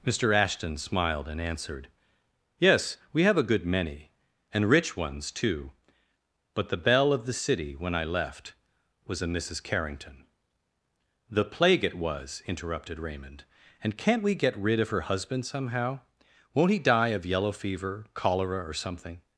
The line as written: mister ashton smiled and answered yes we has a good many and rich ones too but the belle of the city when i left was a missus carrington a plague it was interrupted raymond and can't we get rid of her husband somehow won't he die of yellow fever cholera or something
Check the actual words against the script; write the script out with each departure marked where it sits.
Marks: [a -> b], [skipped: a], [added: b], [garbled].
mister ashton smiled and answered yes we [has -> have] a good many and rich ones too but the belle of the city when i left was a missus carrington [a -> the] plague it was interrupted raymond and can't we get rid of her husband somehow won't he die of yellow fever cholera or something